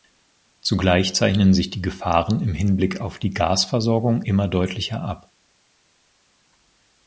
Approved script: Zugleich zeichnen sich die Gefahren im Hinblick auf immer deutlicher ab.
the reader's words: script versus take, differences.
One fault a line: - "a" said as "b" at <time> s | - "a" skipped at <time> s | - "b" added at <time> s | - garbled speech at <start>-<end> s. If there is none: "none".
- "die Gasversorgung" added at 3.2 s